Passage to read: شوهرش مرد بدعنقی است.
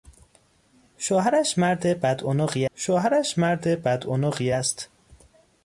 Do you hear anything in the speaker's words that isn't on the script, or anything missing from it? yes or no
yes